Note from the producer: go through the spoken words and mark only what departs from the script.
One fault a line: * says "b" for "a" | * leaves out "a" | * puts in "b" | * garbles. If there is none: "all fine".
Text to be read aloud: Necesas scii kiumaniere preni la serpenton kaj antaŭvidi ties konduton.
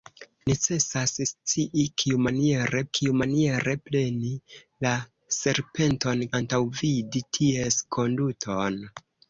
* puts in "kiumaniere"
* leaves out "kaj"